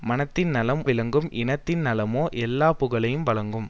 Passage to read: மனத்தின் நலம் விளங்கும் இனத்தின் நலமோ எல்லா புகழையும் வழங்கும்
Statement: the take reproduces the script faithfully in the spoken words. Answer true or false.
true